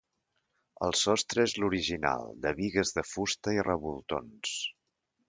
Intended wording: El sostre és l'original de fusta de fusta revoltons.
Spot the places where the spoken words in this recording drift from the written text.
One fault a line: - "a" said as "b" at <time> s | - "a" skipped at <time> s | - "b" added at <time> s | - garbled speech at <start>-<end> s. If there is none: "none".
- "fusta" said as "bigues" at 2.6 s
- "i" added at 3.6 s